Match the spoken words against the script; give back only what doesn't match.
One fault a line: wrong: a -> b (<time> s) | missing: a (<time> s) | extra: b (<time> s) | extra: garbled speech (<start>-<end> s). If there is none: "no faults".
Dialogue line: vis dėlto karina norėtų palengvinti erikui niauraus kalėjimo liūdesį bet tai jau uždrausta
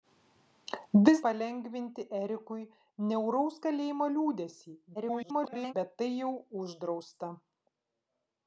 missing: dėlto karina norėtų (1.2 s)
extra: garbled speech (4.9-5.7 s)